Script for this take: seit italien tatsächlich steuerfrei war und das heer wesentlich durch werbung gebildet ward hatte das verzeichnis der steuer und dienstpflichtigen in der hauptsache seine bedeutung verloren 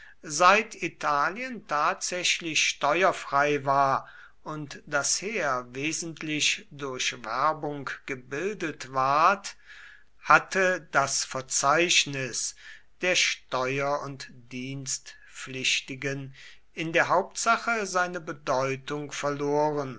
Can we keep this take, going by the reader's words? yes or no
yes